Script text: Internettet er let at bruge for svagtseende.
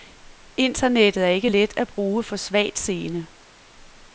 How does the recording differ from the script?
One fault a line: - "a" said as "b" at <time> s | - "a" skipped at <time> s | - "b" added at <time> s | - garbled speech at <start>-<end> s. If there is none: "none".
- "ikke" added at 1.3 s